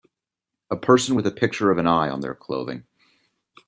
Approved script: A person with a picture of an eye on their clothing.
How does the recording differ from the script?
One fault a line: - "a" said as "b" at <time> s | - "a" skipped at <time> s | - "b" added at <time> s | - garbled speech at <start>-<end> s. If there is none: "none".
none